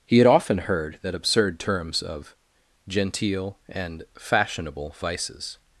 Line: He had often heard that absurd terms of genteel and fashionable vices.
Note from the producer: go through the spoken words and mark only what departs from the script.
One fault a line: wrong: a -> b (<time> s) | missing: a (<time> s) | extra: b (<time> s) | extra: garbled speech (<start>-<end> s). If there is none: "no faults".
no faults